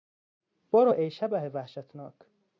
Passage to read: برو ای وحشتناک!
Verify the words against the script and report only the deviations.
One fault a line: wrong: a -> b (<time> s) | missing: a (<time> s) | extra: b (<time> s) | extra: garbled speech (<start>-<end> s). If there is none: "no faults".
extra: شبح (1.1 s)